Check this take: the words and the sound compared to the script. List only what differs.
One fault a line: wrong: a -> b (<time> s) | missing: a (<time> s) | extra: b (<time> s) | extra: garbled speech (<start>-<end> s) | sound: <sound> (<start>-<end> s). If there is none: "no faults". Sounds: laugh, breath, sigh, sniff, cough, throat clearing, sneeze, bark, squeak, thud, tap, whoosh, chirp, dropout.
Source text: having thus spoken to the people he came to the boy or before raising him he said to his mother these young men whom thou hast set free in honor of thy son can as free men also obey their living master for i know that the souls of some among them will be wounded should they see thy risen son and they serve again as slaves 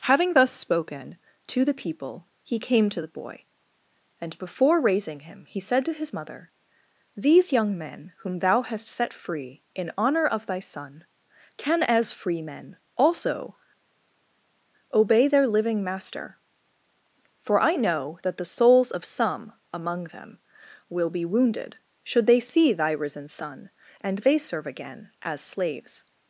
wrong: or -> and (4.2 s)